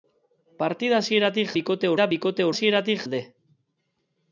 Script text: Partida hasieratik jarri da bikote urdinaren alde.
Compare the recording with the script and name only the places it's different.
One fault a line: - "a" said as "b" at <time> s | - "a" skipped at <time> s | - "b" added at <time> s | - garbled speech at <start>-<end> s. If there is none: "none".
- "jarri" said as "bikote" at 1.6 s
- "urdinaren" said as "hasieratik" at 2.5 s